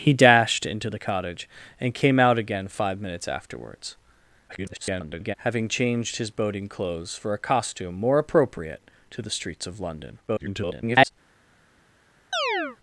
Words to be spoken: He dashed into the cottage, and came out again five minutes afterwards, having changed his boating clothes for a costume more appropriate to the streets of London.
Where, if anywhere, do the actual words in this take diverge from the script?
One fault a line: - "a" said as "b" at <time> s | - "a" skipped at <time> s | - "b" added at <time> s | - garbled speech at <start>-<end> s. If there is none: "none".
- garbled speech at 4.5-5.4 s
- garbled speech at 10.3-11.1 s